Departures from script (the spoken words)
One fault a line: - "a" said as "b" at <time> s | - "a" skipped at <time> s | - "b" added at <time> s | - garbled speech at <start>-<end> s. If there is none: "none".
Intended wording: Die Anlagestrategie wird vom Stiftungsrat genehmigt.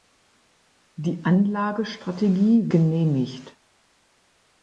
- "wird vom Stiftungsrat" skipped at 2.7 s